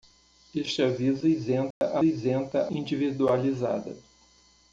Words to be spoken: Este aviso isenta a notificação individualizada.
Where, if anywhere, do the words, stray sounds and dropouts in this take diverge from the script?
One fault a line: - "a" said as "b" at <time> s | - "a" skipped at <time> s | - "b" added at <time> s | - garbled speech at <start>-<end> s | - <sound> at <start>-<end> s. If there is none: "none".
- dropout at 1.7-1.8 s
- "notificação" said as "isenta" at 2.0 s